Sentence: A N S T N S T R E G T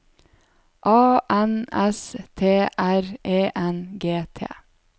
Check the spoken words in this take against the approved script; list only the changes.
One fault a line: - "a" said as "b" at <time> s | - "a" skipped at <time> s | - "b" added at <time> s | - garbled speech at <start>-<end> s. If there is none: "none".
- "N S T" skipped at 2.7 s
- "N" added at 3.5 s